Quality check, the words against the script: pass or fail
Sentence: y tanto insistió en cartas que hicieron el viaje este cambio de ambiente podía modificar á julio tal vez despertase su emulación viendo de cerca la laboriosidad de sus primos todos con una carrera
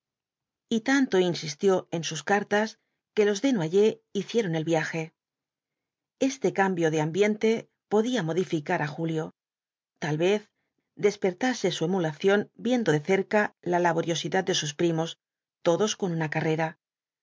fail